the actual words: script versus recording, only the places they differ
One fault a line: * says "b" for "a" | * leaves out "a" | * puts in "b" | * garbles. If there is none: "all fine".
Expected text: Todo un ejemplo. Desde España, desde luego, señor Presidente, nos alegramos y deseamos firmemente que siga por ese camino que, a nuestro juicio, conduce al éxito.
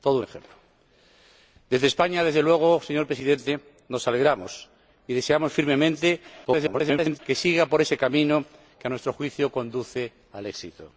* garbles